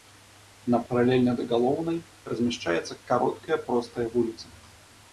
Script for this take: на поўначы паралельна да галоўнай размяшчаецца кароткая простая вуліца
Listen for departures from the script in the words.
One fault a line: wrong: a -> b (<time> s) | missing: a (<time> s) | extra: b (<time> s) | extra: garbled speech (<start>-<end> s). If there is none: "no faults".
missing: поўначы (0.8 s)